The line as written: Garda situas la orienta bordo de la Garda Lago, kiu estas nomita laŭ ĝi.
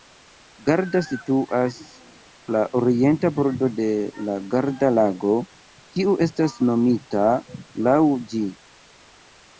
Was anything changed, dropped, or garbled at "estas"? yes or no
no